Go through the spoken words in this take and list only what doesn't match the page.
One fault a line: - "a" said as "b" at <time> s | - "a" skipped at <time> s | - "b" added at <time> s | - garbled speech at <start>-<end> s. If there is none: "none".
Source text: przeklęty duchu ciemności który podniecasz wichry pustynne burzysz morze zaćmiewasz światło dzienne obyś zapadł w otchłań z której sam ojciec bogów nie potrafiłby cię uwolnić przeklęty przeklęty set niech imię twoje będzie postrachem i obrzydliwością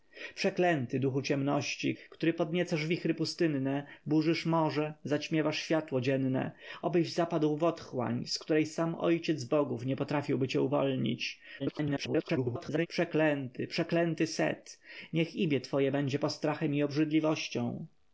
- garbled speech at 11.6-12.9 s